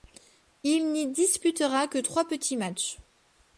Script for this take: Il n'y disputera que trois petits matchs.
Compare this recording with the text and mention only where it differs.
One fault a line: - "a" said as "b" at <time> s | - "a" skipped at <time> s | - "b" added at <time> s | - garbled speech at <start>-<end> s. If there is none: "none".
none